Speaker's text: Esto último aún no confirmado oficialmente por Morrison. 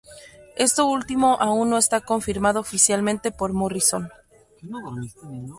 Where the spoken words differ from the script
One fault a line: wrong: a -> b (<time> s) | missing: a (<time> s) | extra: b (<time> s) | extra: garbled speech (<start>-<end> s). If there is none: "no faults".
extra: está (1.8 s)